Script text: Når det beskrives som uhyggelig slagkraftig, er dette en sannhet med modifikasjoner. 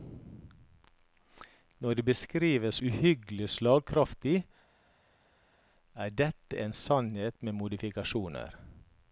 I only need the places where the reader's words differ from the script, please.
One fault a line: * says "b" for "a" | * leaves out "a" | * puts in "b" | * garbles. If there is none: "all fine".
* leaves out "som"